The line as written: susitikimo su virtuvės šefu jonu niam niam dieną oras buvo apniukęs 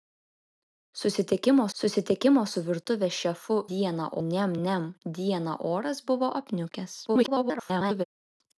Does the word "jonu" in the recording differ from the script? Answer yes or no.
yes